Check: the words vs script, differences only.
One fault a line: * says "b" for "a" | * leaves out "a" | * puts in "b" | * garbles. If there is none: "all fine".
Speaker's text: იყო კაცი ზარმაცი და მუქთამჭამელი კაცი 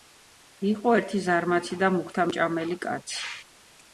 * says "ერთი" for "კაცი"